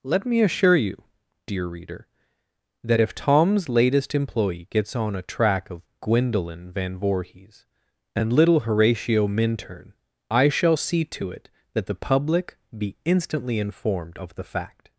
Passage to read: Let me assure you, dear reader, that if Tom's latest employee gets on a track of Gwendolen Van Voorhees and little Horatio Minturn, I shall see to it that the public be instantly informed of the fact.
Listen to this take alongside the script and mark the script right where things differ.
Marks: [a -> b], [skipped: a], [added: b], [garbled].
Let me assure you, dear reader, that if Tom's latest employee gets on a track of Gwendolen Van Voorhees and little Horatio Minturn, I shall see to it that the public be instantly informed of the fact.